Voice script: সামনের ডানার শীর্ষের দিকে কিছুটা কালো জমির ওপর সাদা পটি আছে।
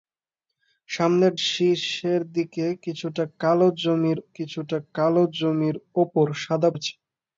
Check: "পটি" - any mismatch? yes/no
yes